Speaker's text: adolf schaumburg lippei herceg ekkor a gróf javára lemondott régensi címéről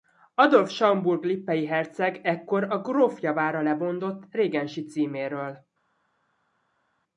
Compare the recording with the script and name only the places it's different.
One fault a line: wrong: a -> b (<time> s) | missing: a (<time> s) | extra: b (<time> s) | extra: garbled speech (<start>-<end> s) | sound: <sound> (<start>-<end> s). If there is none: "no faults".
no faults